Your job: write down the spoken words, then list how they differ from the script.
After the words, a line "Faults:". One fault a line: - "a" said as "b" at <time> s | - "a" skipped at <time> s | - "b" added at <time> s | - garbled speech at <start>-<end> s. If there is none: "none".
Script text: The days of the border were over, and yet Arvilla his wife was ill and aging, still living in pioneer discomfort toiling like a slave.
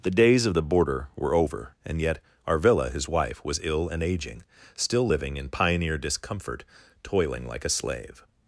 The days of the border were over, and yet Arvilla his wife was ill and aging, still living in pioneer discomfort toiling like a slave.
Faults:
none